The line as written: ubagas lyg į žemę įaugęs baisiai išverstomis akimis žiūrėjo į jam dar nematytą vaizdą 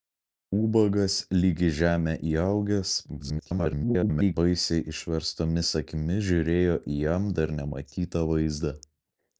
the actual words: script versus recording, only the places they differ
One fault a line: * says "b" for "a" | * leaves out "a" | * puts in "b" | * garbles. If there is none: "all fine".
* garbles